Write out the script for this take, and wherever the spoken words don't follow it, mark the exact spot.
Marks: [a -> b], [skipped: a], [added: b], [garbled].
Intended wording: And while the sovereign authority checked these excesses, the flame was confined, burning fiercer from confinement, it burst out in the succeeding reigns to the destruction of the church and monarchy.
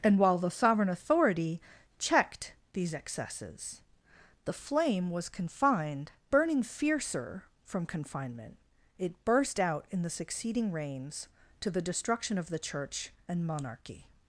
And while the sovereign authority checked these excesses, the flame was confined, burning fiercer from confinement, it burst out in the succeeding reigns to the destruction of the church and monarchy.